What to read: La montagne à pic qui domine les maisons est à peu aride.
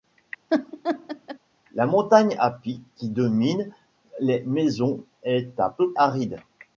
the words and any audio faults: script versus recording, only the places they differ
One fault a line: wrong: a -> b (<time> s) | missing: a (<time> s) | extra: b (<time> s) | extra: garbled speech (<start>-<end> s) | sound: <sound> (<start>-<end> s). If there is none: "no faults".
sound: laugh (0.5-1.4 s)